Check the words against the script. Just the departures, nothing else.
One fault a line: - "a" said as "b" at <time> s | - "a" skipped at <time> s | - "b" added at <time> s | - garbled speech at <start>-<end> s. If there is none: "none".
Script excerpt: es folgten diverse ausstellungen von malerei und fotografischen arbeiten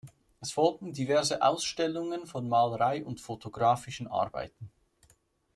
none